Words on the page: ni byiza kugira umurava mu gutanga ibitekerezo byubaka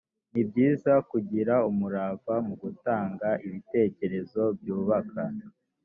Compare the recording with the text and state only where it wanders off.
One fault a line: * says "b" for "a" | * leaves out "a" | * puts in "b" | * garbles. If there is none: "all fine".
all fine